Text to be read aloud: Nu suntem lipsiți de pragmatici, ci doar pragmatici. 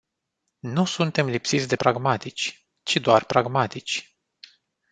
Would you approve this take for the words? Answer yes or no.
yes